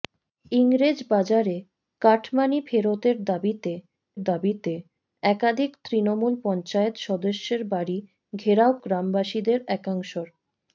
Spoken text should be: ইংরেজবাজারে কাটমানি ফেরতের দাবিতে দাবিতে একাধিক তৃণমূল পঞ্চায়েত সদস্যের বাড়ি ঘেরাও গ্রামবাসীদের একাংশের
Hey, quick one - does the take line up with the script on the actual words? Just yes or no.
yes